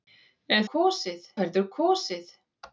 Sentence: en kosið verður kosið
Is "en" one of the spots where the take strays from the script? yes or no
no